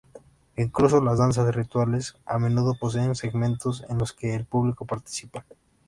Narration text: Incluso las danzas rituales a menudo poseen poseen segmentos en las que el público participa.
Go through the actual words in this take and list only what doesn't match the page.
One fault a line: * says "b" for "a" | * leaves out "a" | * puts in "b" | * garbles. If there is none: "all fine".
* leaves out "poseen"
* says "los" for "las"